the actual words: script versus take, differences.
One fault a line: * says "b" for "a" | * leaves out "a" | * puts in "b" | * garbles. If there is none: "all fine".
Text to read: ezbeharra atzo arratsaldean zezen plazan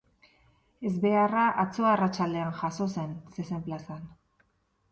* puts in "jazo zen"